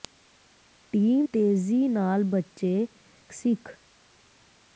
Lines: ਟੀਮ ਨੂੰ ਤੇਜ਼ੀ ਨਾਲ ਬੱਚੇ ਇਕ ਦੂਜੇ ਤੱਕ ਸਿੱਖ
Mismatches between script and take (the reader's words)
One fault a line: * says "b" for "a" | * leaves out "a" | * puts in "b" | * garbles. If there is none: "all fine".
* leaves out "ਨੂੰ"
* leaves out "ਇਕ ਦੂਜੇ ਤੱਕ"